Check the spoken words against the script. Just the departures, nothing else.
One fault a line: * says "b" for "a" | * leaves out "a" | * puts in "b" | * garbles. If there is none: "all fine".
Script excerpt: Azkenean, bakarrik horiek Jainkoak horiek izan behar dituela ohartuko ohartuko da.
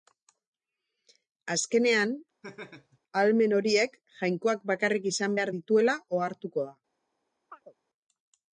* says "ahalmen" for "bakarrik"
* says "bakarrik" for "horiek"
* leaves out "ohartuko"